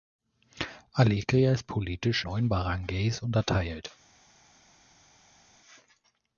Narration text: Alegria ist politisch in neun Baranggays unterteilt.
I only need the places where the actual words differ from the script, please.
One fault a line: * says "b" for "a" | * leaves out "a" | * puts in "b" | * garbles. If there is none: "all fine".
* leaves out "in"